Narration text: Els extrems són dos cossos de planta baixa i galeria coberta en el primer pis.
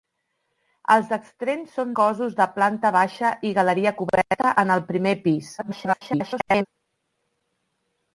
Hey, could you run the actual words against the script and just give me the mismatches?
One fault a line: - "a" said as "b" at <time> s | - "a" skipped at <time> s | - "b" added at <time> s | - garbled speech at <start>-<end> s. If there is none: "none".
- "dos" skipped at 1.9 s
- garbled speech at 5.6-6.7 s